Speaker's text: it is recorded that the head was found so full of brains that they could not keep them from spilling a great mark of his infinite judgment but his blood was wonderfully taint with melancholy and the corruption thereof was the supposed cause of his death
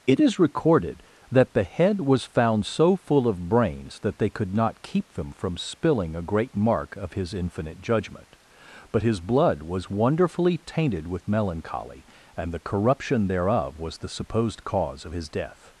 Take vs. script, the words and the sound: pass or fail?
fail